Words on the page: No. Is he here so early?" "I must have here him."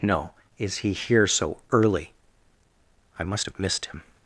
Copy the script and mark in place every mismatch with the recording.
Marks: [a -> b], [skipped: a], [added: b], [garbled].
No. Is he here so early?" "I must have [here -> missed] him."